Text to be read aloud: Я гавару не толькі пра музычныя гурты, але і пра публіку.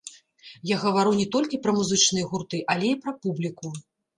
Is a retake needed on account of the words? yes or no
no